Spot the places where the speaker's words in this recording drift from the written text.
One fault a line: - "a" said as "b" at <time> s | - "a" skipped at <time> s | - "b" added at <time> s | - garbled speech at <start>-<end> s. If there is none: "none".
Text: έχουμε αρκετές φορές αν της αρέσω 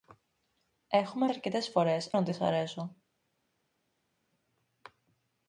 none